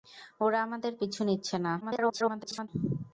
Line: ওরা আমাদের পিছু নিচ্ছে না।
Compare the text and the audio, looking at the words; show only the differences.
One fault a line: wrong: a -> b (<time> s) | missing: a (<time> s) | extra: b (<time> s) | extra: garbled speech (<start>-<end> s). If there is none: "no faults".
extra: garbled speech (1.8-2.7 s)